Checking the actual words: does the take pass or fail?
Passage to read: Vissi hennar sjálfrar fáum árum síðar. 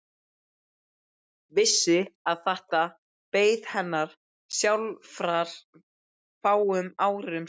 fail